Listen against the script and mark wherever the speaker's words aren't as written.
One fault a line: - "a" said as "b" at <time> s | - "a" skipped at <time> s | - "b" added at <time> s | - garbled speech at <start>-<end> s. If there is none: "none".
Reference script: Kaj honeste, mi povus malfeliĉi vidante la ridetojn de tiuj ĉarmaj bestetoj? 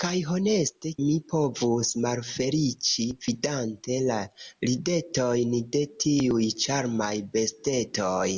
none